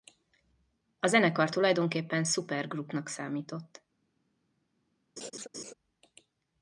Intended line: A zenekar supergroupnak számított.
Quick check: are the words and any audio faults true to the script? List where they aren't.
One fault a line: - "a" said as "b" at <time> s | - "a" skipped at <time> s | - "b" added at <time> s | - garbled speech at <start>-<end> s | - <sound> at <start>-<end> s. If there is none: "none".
- "tulajdonképpen" added at 1.5 s
- laugh at 5.2-5.7 s